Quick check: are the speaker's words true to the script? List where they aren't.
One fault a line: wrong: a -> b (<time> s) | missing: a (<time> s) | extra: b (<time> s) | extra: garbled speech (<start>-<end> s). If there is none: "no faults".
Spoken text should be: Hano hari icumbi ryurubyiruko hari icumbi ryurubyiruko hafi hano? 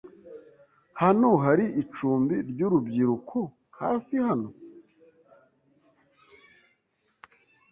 missing: hari icumbi ryurubyiruko (3.4 s)